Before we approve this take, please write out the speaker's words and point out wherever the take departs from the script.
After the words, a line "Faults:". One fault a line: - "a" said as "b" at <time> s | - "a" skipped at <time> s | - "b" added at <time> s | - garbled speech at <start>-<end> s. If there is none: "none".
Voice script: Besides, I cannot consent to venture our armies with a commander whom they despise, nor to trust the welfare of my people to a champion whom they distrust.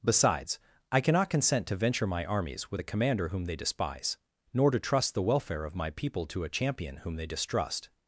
Besides, I cannot consent to venture my armies with a commander whom they despise, nor to trust the welfare of my people to a champion whom they distrust.
Faults:
- "our" said as "my" at 2.1 s